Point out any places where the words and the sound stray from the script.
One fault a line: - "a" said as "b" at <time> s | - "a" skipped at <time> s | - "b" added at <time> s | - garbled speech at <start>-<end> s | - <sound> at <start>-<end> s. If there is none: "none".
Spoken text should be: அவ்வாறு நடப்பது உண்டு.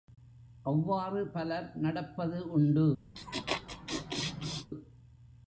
- "பலர்" added at 1.3 s
- laugh at 3.1-4.7 s